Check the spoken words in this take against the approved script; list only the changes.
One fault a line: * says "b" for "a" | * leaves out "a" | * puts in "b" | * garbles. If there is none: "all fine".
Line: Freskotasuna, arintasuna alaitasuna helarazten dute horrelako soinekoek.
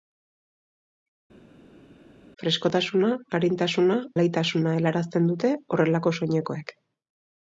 all fine